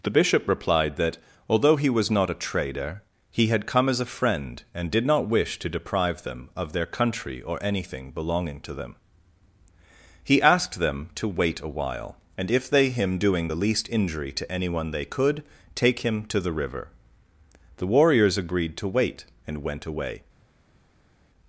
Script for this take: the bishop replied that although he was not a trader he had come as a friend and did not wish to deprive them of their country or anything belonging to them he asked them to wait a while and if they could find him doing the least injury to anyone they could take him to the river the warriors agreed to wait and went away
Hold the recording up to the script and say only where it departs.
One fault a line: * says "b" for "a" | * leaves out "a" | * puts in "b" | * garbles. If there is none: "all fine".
* leaves out "could find"